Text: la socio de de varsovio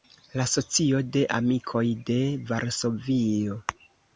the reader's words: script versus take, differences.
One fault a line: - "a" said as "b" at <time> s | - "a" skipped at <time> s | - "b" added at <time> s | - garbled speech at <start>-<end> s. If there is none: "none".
- "amikoj" added at 1.4 s